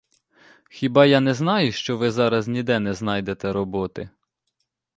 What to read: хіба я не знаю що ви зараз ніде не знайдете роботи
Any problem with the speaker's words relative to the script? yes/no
no